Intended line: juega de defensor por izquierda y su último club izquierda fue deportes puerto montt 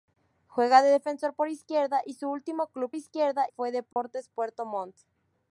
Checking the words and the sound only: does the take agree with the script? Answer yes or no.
no